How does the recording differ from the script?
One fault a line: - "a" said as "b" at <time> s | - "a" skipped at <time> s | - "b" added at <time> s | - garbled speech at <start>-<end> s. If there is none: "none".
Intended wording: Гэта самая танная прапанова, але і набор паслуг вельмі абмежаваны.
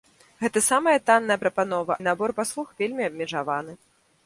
- "але" skipped at 2.0 s